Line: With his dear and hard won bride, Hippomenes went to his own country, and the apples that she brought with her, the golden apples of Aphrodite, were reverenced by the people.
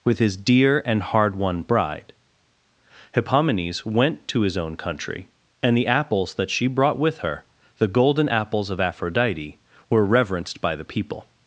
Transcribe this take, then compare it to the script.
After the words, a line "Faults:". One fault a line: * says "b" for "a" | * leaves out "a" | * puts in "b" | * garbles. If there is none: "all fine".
With his dear and hard won bride, Hippomenes went to his own country, and the apples that she brought with her, the golden apples of Aphrodite, were reverenced by the people.
Faults:
all fine